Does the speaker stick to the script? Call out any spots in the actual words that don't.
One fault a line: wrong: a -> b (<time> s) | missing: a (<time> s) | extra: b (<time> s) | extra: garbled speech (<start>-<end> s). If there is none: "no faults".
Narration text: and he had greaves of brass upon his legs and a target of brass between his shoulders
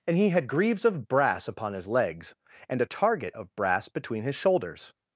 no faults